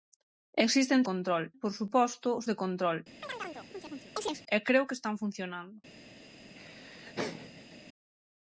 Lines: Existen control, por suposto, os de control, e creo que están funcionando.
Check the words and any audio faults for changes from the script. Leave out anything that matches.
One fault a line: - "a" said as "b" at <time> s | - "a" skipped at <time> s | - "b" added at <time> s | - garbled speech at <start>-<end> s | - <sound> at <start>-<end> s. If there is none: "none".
- chirp at 3.2-4.4 s
- laugh at 6.5-7.8 s